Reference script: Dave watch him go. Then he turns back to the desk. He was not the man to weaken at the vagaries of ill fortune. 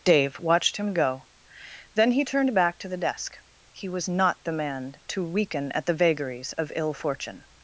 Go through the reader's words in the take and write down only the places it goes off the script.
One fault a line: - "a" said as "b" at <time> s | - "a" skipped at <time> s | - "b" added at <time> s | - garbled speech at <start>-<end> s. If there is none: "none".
- "watch" said as "watched" at 0.4 s
- "turns" said as "turned" at 2.2 s